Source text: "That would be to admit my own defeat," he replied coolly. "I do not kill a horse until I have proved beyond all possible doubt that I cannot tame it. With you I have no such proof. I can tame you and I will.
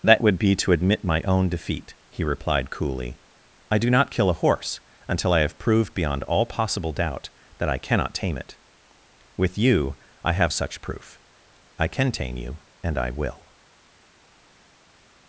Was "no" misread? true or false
true